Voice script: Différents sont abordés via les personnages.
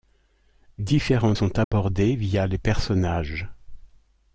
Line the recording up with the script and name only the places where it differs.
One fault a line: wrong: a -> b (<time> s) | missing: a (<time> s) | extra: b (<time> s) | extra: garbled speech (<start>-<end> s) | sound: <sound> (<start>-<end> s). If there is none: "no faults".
sound: dropout (1.6-1.7 s)